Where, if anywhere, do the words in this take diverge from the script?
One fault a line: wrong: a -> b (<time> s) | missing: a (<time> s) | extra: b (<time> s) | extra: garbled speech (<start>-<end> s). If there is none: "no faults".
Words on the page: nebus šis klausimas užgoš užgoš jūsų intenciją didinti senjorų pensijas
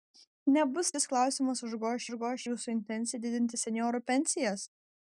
no faults